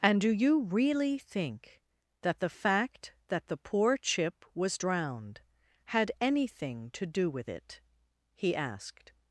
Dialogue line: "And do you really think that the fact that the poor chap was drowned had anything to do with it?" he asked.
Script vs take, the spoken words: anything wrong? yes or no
yes